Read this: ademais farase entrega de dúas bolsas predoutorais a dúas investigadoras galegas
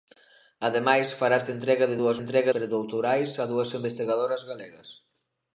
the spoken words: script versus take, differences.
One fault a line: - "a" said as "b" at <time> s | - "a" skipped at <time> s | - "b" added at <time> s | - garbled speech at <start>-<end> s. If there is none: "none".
- "bolsas" said as "entrega" at 2.2 s